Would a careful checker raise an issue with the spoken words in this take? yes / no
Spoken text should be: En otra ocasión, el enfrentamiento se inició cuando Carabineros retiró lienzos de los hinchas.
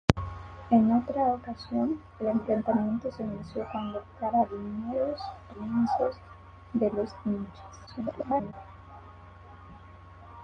yes